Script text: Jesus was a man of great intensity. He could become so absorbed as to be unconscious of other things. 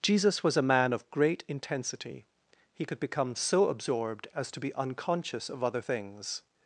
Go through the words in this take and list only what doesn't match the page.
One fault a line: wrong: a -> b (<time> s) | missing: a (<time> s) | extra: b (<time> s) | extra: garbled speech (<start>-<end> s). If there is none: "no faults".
no faults